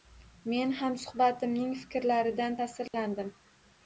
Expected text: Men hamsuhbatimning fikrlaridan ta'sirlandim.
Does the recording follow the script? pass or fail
pass